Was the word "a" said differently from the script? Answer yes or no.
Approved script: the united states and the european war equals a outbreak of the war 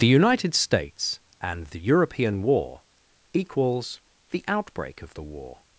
yes